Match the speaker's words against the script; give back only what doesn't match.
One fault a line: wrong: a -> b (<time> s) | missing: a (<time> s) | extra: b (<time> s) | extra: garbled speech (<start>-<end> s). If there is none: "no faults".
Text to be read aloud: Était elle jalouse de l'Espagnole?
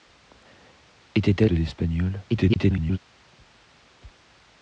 missing: elle jalouse (1.4 s)
extra: garbled speech (2.3-3.0 s)